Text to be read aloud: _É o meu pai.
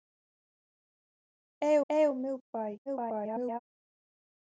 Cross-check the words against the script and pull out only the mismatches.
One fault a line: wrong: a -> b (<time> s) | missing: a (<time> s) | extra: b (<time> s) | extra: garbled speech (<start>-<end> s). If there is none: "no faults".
extra: é (1.9 s)
extra: garbled speech (2.9-3.6 s)